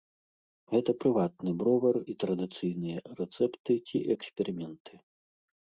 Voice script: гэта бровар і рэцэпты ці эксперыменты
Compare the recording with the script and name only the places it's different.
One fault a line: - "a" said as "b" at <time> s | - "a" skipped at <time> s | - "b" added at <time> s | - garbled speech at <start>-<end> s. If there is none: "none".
- "прыватны" added at 1.0 s
- "традыцыйныя" added at 2.3 s